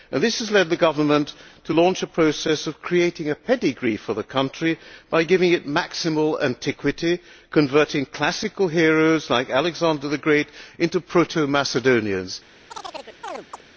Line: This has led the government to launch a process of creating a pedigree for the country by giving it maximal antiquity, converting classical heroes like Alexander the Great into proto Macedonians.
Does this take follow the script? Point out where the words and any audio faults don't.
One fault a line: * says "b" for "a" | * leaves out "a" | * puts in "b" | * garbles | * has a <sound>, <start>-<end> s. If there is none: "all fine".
* has a chirp, 12.7-13.6 s